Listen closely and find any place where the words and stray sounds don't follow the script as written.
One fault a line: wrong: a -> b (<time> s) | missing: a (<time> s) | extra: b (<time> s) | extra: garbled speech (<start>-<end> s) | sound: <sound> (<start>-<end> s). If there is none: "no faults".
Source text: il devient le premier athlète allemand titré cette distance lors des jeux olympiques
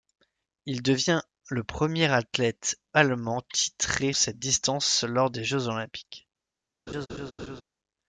sound: laugh (6.9-7.6 s)